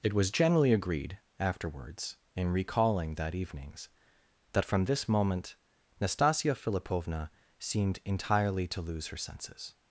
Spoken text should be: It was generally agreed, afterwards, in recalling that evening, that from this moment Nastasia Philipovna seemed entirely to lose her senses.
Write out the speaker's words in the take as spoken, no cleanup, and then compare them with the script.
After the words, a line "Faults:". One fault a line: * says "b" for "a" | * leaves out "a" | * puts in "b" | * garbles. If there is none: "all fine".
It was generally agreed, afterwards, in recalling that evenings, that from this moment Nastasia Philipovna seemed entirely to lose her senses.
Faults:
* says "evenings" for "evening"